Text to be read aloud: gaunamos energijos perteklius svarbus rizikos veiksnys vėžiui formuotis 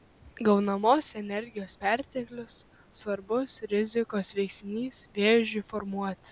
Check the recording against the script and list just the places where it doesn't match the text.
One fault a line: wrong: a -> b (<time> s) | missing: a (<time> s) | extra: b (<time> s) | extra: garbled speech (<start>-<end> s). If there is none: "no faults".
no faults